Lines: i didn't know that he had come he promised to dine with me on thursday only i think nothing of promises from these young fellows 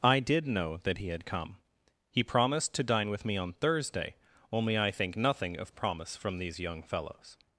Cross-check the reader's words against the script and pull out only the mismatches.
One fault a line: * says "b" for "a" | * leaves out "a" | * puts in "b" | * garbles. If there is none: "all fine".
* says "did" for "didn't"
* says "promise" for "promises"